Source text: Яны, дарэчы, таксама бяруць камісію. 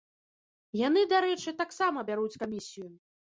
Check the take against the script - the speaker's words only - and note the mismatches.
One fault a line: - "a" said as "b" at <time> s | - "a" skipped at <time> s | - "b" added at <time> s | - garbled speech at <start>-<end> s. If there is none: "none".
none